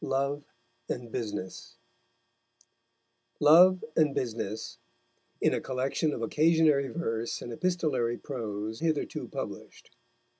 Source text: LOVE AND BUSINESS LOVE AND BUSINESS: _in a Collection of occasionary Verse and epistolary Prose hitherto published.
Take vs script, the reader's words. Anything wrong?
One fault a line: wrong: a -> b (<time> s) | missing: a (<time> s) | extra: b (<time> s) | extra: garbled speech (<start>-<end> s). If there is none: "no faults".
no faults